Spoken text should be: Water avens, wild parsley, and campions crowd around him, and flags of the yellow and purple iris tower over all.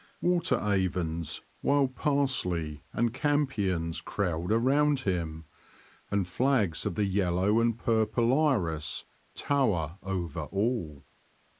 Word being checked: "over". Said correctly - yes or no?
yes